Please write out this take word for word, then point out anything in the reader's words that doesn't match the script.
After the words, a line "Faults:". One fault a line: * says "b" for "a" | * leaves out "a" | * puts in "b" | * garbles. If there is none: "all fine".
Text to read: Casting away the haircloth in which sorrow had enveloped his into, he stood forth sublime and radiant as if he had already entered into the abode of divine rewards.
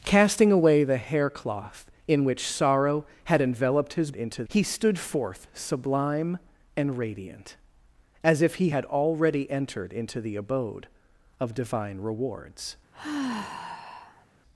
Casting away the haircloth in which sorrow had enveloped his into, he stood forth sublime and radiant as if he had already entered into the abode of divine rewards.
Faults:
all fine